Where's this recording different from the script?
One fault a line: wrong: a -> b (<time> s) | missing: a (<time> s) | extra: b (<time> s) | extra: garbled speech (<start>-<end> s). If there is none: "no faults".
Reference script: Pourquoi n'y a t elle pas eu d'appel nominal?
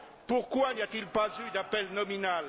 wrong: elle -> il (1.0 s)